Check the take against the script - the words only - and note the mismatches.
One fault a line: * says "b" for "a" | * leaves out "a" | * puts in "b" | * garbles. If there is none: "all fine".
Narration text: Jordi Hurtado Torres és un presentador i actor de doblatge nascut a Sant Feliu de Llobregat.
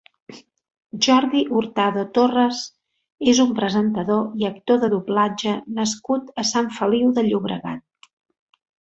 all fine